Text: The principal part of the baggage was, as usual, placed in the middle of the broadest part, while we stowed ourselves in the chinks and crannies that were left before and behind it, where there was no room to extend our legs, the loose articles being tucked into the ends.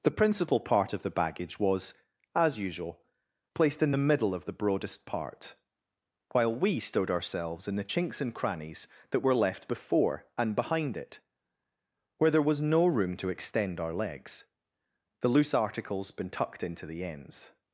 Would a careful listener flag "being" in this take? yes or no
yes